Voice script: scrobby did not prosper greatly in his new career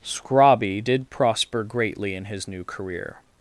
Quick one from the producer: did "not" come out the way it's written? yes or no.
no